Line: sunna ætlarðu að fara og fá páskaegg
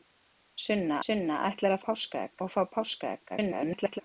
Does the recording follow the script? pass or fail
fail